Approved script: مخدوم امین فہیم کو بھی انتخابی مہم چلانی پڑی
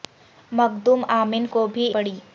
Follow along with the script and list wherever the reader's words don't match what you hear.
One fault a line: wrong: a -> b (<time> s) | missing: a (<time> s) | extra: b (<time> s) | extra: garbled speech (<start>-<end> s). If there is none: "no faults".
missing: فہیم (1.4 s)
missing: انتخابی مہم چلانی (1.9 s)